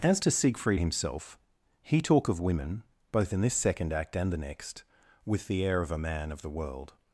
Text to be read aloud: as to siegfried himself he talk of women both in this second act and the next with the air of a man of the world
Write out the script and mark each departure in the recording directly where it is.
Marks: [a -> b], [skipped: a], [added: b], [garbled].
as to siegfried himself he talk of women both in this second act and the next with the air of a man of the world